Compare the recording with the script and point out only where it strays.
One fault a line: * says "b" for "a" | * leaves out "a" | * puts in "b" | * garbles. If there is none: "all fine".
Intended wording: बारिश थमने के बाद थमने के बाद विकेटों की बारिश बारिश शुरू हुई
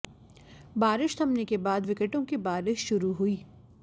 * leaves out "थमने के बाद"
* leaves out "बारिश"